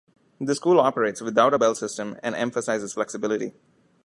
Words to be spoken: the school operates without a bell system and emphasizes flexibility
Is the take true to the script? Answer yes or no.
yes